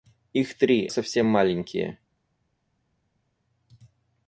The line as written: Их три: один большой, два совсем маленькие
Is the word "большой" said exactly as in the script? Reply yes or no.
no